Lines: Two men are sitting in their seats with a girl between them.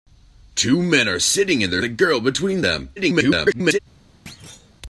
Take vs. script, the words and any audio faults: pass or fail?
fail